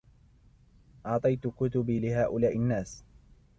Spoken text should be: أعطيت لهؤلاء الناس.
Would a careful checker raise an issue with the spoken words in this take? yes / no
yes